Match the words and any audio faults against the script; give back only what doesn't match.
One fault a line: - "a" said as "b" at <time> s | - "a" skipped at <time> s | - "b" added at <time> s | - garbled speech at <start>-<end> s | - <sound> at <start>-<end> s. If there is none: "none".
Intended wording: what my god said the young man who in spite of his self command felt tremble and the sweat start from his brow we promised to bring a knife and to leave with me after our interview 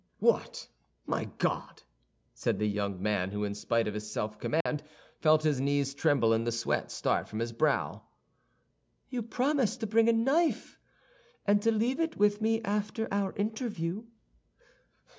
- dropout at 4.6-4.7 s
- "his knees" added at 5.4 s
- "we" said as "you" at 9.1 s
- "it" added at 12.0 s